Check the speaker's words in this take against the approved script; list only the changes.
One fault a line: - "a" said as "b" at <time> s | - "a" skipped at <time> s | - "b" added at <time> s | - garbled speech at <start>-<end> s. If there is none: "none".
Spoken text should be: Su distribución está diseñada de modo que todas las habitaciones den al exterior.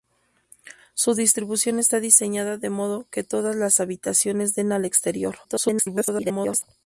- garbled speech at 5.4-6.6 s